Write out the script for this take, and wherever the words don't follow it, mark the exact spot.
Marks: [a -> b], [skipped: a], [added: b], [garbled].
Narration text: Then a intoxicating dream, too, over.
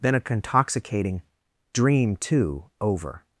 Then a intoxicating dream, too, over.